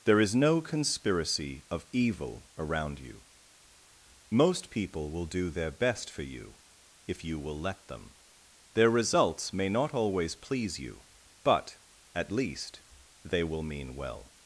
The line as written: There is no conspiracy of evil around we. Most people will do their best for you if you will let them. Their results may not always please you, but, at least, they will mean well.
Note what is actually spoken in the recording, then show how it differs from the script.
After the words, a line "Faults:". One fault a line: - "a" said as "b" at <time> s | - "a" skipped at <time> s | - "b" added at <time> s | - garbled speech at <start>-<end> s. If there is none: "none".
There is no conspiracy of evil around you. Most people will do their best for you if you will let them. Their results may not always please you, but, at least, they will mean well.
Faults:
- "we" said as "you" at 3.0 s